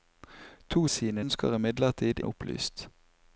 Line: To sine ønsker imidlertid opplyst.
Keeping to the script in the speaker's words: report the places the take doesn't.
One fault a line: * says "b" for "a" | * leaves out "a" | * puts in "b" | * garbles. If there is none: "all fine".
all fine